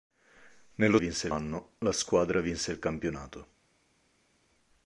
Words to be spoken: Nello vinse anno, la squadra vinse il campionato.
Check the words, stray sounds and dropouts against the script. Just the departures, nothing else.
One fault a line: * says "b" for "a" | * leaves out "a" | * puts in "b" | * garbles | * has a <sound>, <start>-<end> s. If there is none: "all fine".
all fine